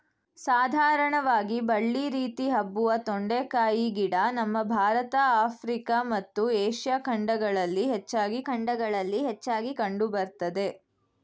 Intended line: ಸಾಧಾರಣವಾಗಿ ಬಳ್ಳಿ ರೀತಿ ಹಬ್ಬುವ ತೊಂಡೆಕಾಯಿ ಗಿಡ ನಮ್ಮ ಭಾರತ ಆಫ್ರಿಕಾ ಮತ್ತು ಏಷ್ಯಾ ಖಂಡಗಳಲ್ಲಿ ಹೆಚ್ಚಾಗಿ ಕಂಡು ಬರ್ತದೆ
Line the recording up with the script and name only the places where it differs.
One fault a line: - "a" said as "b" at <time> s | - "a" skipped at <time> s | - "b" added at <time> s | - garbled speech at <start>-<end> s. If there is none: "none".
- "ಖಂಡಗಳಲ್ಲಿ ಹೆಚ್ಚಾಗಿ" added at 8.5 s